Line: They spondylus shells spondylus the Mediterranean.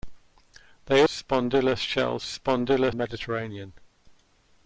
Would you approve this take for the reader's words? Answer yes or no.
yes